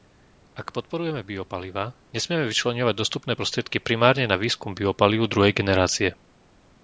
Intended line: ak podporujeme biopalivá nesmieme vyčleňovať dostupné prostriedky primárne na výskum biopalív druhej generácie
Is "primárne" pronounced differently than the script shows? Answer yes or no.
no